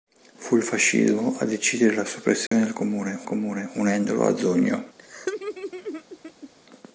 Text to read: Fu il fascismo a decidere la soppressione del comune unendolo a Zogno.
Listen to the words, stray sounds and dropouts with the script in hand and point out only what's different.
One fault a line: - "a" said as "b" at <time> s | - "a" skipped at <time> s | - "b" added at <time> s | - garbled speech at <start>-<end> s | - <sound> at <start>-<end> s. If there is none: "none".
- dropout at 2.5-2.5 s
- "comune" added at 3.2 s
- laugh at 5.0-6.5 s